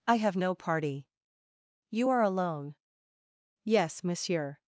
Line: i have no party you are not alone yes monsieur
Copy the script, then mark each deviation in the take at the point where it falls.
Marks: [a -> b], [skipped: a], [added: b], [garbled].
i have no party you are [skipped: not] alone yes monsieur